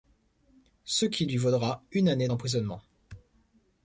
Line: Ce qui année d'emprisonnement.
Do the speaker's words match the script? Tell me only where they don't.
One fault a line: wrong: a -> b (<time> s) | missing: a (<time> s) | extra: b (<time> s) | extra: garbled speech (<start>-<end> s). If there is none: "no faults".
extra: lui vaudra une (1.2 s)